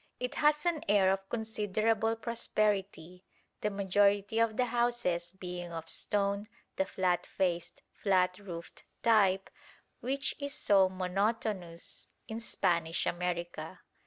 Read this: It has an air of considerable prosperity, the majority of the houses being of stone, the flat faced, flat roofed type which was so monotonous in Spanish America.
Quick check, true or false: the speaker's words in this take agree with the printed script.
false